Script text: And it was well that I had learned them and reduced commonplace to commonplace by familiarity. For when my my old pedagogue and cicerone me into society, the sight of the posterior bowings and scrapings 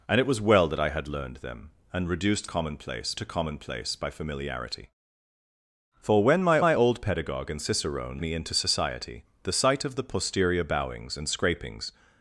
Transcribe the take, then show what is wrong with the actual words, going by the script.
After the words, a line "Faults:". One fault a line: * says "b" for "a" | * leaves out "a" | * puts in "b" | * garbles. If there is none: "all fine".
And it was well that I had learned them and reduced commonplace to commonplace by familiarity. For when my my old pedagogue and cicerone me into society, the sight of the posterior bowings and scrapings
Faults:
all fine